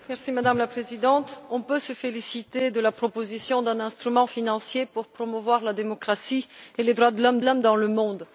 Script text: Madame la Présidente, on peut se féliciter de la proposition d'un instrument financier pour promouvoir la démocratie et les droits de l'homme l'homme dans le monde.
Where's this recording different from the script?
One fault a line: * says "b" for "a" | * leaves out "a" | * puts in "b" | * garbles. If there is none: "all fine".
all fine